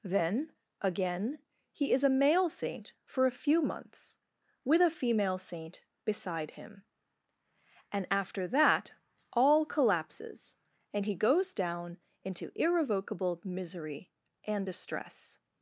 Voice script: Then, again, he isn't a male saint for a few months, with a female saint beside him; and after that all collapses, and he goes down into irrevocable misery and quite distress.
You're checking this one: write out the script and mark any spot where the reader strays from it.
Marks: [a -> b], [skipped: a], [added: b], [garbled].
Then, again, he [isn't -> is] a male saint for a few months, with a female saint beside him; and after that all collapses, and he goes down into irrevocable misery and [skipped: quite] distress.